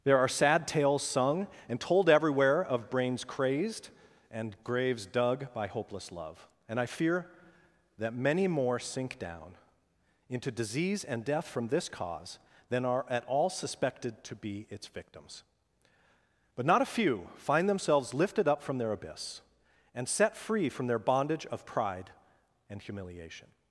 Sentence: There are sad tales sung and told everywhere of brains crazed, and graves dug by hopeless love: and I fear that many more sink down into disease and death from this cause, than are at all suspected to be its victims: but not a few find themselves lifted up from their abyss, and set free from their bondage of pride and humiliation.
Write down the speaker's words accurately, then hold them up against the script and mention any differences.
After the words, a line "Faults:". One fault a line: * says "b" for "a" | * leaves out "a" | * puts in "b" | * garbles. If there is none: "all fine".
There are sad tales sung and told everywhere of brains crazed, and graves dug by hopeless love: and I fear that many more sink down into disease and death from this cause, than are at all suspected to be its victims: but not a few find themselves lifted up from their abyss, and set free from their bondage of pride and humiliation.
Faults:
all fine